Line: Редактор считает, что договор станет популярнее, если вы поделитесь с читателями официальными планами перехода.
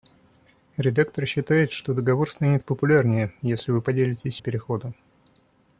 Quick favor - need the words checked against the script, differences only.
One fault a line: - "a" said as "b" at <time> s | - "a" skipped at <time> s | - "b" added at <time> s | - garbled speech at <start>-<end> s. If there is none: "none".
- "читателями официальными планами" skipped at 4.4 s